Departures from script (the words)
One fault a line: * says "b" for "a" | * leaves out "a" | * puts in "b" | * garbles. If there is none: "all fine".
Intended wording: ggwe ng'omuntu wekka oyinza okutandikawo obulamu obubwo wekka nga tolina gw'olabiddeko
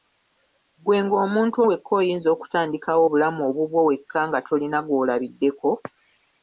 all fine